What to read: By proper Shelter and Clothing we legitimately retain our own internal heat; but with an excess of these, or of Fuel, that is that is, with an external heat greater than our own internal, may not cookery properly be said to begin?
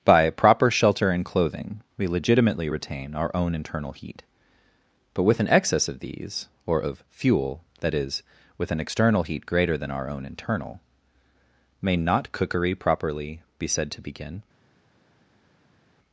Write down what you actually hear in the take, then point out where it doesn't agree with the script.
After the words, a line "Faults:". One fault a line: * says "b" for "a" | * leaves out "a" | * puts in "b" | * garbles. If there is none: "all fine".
By proper Shelter and Clothing we legitimately retain our own internal heat; but with an excess of these, or of Fuel, that is, with an external heat greater than our own internal, may not cookery properly be said to begin?
Faults:
* leaves out "that is"